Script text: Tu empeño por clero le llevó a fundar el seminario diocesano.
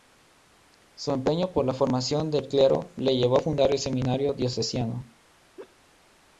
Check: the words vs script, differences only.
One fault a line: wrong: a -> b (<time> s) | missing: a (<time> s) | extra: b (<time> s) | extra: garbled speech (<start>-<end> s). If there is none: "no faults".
wrong: Tu -> Su (0.9 s)
extra: la formación del (1.6 s)